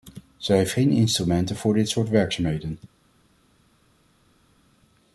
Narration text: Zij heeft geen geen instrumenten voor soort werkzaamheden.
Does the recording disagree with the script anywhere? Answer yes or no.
yes